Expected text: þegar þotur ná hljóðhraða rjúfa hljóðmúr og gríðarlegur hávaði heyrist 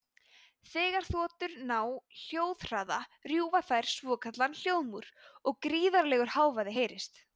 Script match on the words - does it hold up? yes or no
no